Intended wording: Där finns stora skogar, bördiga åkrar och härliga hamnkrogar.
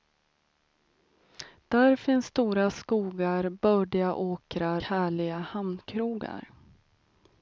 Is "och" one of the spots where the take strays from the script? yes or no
yes